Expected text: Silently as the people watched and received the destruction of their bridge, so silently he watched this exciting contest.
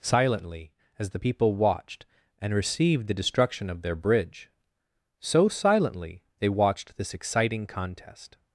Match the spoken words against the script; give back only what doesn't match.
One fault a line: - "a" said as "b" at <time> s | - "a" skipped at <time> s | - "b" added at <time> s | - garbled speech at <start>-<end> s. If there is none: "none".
- "he" said as "they" at 6.4 s